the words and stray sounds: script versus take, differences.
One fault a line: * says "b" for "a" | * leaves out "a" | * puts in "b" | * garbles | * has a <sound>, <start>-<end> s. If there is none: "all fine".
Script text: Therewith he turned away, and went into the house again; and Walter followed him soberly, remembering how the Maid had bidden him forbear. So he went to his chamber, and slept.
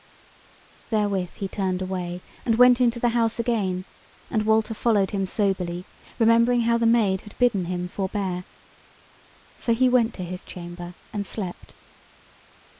all fine